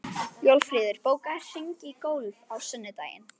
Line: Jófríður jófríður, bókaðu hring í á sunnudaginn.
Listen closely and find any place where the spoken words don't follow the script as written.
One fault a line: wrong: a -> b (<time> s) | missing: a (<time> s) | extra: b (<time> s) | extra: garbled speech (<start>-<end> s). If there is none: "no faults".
missing: jófríður (1.0 s)
extra: golf (2.1 s)